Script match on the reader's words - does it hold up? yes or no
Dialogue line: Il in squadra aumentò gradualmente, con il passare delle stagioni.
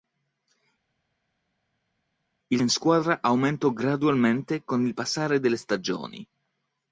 yes